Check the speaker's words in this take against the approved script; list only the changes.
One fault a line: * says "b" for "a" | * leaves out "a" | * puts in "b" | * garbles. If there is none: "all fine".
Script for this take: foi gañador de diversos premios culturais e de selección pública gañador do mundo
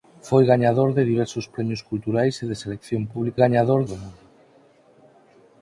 all fine